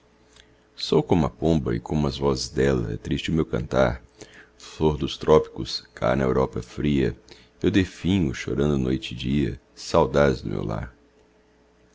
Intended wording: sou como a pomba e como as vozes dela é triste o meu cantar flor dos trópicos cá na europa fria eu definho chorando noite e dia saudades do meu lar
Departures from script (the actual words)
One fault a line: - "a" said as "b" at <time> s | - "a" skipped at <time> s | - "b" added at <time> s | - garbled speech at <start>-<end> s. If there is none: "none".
none